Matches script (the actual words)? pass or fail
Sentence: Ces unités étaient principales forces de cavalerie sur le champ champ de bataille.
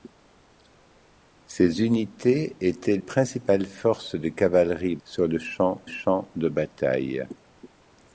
pass